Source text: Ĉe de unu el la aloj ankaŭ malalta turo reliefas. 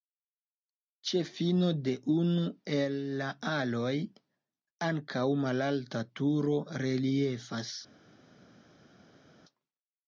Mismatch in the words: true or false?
true